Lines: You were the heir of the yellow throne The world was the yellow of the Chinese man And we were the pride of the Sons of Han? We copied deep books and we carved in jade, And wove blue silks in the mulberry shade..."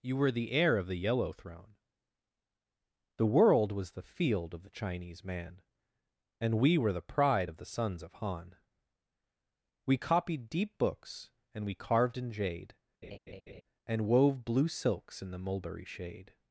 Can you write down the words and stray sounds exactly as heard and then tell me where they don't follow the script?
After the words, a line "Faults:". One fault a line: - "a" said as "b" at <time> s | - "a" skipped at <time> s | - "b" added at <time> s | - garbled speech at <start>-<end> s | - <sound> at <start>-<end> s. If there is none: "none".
You were the heir of the yellow throne The world was the field of the Chinese man And we were the pride of the Sons of Han? We copied deep books and we carved in jade, And wove blue silks in the mulberry shade..."
Faults:
- "yellow" said as "field" at 4.0 s
- laugh at 13.0-13.6 s